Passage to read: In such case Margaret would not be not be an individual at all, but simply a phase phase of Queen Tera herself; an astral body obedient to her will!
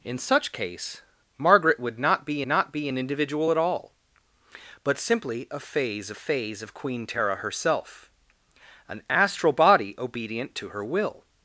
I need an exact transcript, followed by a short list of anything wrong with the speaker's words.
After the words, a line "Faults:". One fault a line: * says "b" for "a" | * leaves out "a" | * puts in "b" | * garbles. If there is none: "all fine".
In such case Margaret would not be not be an individual at all, but simply a phase phase of Queen Tera herself; an astral body obedient to her will!
Faults:
all fine